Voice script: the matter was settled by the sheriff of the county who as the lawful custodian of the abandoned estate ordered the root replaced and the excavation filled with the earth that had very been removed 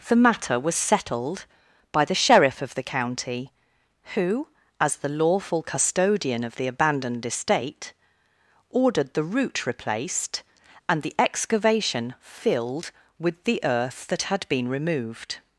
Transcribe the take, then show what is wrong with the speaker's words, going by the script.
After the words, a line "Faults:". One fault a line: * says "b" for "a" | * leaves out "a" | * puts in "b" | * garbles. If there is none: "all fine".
the matter was settled by the sheriff of the county who as the lawful custodian of the abandoned estate ordered the root replaced and the excavation filled with the earth that had been removed
Faults:
* leaves out "very"